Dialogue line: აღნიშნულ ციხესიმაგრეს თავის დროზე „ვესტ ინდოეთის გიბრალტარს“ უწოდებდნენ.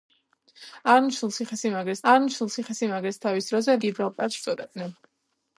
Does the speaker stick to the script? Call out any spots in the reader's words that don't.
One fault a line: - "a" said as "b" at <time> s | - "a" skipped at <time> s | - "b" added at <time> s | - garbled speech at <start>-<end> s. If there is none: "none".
- "აღნიშნულ ციხესიმაგრეს" added at 2.1 s
- "ვესტ ინდოეთის" skipped at 3.8 s